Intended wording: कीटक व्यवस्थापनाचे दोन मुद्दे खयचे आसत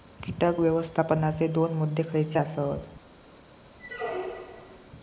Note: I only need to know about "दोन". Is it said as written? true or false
true